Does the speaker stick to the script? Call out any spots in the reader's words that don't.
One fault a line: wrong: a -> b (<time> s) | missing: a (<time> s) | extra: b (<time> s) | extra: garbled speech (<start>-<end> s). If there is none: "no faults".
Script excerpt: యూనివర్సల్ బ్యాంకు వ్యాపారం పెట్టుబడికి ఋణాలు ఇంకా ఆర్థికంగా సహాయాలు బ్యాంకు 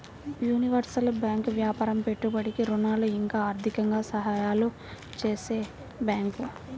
extra: చేసే (5.2 s)